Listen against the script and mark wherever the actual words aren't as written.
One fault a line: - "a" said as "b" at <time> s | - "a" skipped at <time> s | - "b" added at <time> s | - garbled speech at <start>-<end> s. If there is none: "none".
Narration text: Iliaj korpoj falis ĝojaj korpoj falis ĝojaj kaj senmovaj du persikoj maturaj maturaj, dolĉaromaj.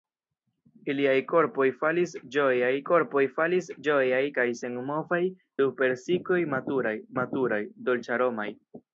none